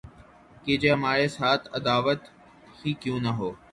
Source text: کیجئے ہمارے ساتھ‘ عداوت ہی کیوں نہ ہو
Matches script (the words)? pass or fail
pass